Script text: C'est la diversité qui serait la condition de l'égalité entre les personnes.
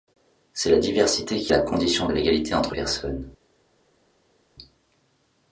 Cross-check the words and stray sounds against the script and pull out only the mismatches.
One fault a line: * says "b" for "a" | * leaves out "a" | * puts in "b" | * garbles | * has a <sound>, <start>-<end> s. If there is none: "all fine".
* leaves out "serait"
* leaves out "les"